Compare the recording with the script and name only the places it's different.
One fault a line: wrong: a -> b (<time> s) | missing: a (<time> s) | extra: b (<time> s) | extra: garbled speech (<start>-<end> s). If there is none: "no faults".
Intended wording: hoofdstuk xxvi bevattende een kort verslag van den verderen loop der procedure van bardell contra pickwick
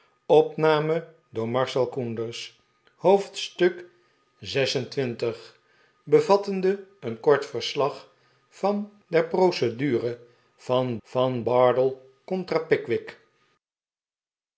missing: den verderen loop (8.9 s)
extra: van (11.0 s)